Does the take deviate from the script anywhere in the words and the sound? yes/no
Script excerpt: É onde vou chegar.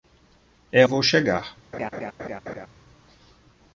yes